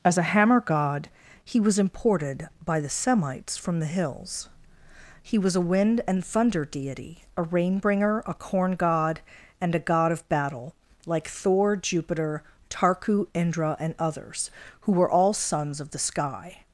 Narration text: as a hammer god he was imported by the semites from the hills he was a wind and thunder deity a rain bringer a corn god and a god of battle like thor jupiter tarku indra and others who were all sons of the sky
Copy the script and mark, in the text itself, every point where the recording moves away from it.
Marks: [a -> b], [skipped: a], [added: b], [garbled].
as a hammer god he was imported by the semites from the hills he was a wind and thunder deity a rain bringer a corn god and a god of battle like thor jupiter tarku indra and others who were all sons of the sky